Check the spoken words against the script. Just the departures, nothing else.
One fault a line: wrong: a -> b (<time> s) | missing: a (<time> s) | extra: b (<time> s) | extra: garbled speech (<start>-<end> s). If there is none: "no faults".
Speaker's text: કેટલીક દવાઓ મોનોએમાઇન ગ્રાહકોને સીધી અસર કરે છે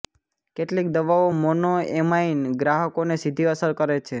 no faults